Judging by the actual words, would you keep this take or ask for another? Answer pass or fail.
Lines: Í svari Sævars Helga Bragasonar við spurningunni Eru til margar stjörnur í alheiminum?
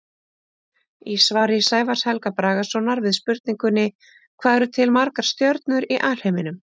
fail